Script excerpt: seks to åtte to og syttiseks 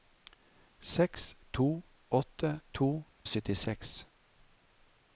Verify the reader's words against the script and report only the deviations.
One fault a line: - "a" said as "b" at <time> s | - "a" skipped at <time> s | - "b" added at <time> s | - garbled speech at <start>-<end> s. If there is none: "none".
none